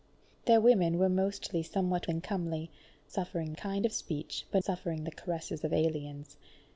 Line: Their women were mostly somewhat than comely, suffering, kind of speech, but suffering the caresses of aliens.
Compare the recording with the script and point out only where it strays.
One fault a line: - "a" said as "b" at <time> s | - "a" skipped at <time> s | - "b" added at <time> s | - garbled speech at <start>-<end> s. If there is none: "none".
none